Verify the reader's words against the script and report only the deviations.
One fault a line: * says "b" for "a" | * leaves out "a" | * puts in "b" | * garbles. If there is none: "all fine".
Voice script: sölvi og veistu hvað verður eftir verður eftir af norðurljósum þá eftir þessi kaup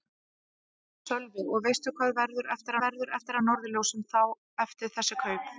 all fine